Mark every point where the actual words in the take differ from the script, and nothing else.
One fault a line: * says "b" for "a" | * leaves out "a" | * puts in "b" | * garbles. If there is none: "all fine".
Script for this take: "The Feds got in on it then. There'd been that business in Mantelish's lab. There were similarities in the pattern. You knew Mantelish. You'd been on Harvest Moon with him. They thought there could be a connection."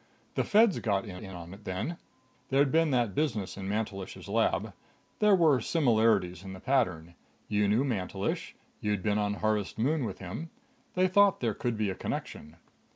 * puts in "in"